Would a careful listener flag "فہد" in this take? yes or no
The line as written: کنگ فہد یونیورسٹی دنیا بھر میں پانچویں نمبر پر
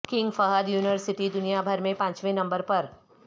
no